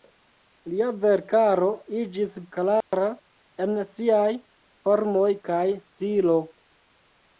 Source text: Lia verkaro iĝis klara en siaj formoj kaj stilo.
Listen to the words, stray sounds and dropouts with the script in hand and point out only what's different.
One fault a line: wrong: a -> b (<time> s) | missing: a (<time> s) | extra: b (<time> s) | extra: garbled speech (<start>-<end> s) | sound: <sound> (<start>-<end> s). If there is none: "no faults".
sound: dropout (2.8-2.9 s)